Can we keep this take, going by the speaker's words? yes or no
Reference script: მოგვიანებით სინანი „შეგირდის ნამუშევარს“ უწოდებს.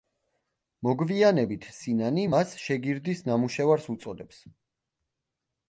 no